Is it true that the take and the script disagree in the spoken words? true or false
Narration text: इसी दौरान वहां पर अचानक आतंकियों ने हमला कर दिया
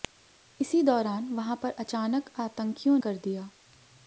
true